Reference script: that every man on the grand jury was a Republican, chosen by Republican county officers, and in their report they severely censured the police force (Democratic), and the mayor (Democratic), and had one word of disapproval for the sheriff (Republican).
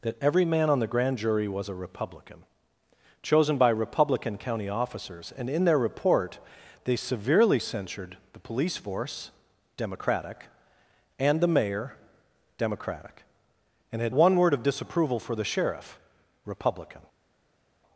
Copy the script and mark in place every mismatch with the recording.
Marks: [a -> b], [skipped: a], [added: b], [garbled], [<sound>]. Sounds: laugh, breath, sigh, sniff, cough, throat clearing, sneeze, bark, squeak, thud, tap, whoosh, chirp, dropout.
that every man on the grand jury was a Republican, chosen by Republican county officers, and in their report they severely censured the police force (Democratic), and the mayor (Democratic), and had one word of disapproval for the sheriff (Republican).